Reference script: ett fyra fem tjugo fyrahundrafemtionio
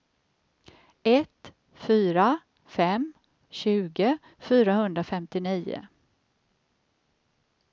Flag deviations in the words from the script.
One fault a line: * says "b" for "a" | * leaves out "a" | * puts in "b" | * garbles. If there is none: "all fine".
all fine